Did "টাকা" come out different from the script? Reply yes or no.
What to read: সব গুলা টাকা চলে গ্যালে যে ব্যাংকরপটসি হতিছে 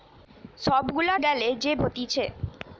yes